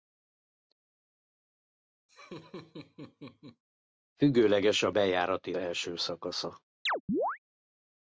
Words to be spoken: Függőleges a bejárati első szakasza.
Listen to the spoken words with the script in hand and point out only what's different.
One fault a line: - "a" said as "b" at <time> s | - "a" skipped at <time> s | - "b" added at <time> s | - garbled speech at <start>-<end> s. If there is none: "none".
none